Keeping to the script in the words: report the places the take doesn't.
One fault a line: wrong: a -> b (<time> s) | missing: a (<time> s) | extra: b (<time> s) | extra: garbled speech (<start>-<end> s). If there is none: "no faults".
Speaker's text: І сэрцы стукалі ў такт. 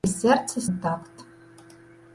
missing: стукалі (0.6 s)